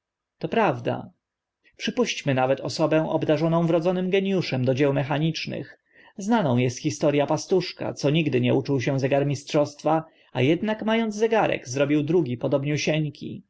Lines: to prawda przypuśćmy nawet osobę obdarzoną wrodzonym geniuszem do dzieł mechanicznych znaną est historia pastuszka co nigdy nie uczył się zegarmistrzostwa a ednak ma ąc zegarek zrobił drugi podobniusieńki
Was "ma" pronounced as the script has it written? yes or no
yes